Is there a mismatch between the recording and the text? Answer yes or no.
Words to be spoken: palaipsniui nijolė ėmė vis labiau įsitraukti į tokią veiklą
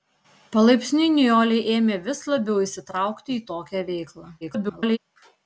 yes